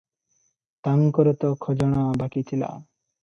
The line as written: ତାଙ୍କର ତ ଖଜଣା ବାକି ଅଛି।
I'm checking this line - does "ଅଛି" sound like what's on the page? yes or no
no